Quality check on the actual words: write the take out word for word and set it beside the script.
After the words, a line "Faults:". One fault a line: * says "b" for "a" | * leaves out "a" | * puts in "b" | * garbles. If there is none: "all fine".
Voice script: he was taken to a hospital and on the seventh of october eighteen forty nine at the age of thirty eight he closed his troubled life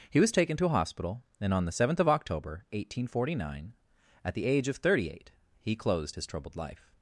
he was taken to a hospital and on the seventh of october eighteen forty nine at the age of thirty eight he closed his troubled life
Faults:
all fine